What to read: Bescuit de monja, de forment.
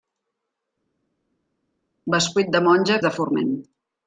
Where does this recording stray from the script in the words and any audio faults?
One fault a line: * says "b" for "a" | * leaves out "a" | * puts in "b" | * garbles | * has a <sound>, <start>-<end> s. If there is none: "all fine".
all fine